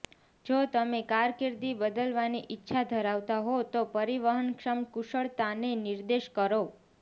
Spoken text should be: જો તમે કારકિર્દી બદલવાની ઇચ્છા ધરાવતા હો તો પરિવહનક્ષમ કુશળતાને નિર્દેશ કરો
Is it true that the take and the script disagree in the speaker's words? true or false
false